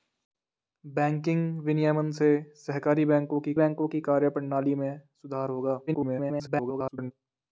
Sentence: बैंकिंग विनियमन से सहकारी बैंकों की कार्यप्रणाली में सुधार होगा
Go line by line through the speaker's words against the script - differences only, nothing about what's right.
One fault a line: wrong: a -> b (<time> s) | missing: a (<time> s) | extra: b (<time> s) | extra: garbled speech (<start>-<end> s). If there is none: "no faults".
extra: बैंकों की (3.5 s)
extra: garbled speech (5.9-7.1 s)